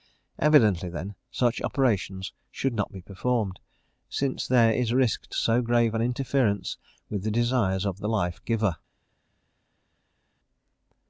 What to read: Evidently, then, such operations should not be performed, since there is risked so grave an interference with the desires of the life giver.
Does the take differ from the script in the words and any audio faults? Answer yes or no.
no